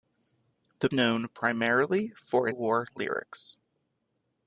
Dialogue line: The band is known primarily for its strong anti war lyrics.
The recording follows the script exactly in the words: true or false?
false